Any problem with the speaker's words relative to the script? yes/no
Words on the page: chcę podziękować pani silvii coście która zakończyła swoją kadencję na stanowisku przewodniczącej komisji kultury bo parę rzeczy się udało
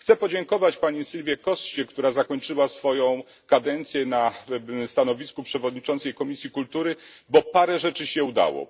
no